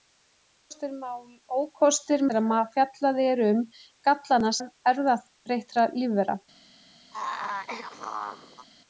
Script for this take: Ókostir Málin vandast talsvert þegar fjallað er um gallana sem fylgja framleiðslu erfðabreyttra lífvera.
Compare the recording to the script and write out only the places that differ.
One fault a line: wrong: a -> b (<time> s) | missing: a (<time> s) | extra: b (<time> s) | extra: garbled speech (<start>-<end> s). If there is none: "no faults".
missing: Málin vandast talsvert (2.2 s)
missing: sem fylgja framleiðslu (4.5 s)